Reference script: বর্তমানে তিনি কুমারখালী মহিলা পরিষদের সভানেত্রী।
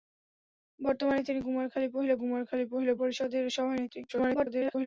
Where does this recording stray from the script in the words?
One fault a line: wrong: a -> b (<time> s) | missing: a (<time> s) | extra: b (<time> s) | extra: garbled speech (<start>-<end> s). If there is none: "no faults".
extra: কুমারখালী মহিলা (2.2 s)
extra: garbled speech (4.1-4.9 s)